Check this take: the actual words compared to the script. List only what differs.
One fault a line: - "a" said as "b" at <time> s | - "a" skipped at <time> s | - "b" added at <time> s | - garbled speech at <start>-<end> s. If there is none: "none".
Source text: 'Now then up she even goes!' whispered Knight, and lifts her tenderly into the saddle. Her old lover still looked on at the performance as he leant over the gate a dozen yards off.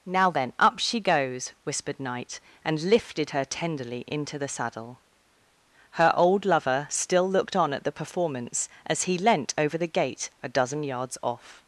- "even" skipped at 1.0 s
- "lifts" said as "lifted" at 2.8 s